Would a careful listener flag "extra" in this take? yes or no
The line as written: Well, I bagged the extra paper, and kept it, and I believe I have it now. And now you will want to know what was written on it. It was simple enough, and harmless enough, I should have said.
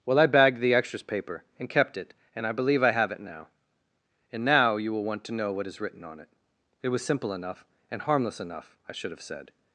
yes